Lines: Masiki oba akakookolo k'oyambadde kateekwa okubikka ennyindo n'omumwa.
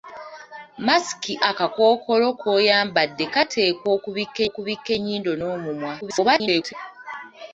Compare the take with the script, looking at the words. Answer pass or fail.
fail